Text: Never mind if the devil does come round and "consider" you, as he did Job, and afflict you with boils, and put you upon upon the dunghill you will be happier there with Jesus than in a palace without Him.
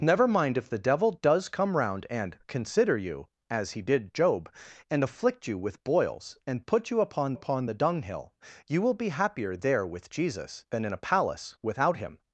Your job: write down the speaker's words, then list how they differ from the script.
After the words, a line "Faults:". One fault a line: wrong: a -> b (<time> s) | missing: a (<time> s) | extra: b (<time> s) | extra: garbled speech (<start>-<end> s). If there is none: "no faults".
Never mind if the devil does come round and "consider" you, as he did Job, and afflict you with boils, and put you upon upon the dunghill you will be happier there with Jesus than in a palace without Him.
Faults:
no faults